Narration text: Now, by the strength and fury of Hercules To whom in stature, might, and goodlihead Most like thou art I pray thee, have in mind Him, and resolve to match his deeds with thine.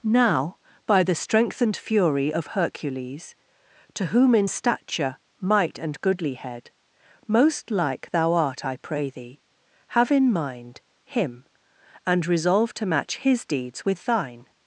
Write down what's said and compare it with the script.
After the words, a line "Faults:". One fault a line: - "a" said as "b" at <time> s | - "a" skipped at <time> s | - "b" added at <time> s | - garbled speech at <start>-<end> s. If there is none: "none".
Now, by the strength and fury of Hercules To whom in stature, might, and goodlihead Most like thou art I pray thee, have in mind Him, and resolve to match his deeds with thine.
Faults:
none